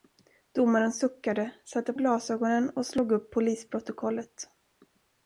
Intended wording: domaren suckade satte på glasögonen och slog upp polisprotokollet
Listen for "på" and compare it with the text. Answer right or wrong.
wrong